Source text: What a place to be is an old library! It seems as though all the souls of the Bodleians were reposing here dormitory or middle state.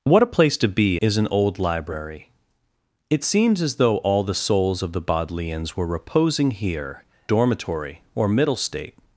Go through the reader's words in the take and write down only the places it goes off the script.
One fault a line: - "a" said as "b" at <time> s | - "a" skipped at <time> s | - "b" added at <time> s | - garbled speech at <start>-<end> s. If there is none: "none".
none